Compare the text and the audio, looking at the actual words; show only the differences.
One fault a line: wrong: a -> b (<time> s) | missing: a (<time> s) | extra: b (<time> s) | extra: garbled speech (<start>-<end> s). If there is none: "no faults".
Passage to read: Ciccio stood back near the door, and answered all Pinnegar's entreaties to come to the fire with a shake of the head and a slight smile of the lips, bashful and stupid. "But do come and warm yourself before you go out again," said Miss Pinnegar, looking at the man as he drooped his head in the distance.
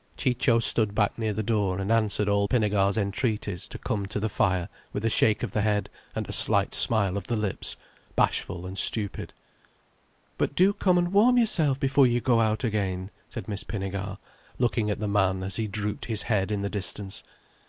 no faults